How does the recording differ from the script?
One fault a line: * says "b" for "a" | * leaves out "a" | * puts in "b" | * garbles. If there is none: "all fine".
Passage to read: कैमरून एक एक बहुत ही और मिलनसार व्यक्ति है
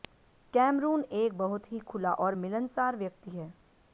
* leaves out "एक"
* puts in "खुला"